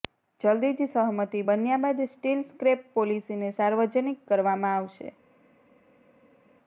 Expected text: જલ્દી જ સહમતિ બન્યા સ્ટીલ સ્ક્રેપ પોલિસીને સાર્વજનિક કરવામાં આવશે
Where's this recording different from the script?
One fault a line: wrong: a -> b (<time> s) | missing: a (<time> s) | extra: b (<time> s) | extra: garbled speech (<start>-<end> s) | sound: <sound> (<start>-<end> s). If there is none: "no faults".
extra: બાદ (1.8 s)